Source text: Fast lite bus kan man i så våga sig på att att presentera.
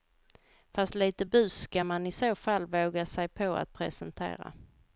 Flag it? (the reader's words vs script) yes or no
yes